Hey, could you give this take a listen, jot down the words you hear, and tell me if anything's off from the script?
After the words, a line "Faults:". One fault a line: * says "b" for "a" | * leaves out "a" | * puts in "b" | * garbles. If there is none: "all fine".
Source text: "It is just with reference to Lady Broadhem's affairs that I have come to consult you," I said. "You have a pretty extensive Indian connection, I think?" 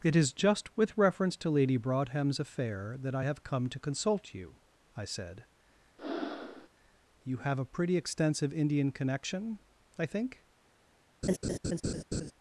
"It is just with reference to Lady Broadhem's affair that I have come to consult you," I said. "You have a pretty extensive Indian connection, I think?"
Faults:
* says "affair" for "affairs"